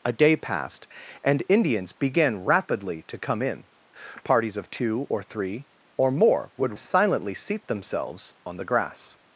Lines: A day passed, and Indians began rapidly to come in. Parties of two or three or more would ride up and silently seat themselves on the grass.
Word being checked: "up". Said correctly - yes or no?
no